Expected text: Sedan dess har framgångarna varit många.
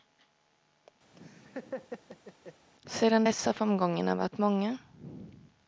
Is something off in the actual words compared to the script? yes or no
no